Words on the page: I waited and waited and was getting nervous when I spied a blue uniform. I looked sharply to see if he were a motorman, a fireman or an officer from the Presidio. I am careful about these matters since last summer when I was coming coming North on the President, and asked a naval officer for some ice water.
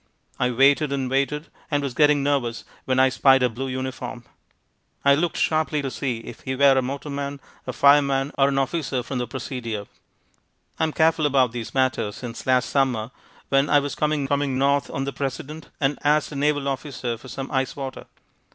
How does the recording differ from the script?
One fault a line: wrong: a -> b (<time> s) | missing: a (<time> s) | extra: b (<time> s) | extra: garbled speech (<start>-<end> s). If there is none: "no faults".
no faults